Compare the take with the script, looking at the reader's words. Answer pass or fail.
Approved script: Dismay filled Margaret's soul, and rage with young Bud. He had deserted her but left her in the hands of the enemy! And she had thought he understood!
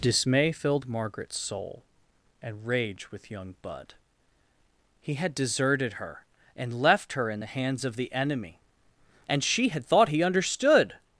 fail